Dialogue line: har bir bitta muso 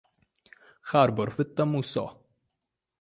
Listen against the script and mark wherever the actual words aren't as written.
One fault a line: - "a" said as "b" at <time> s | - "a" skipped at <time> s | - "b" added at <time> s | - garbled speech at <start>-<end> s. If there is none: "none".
none